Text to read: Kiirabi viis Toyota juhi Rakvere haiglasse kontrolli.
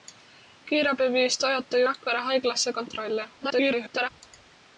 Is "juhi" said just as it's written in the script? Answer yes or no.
no